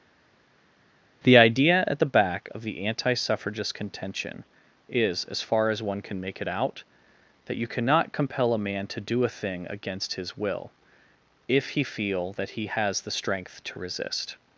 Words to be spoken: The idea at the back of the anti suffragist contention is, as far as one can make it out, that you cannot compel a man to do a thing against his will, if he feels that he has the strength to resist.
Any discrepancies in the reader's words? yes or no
yes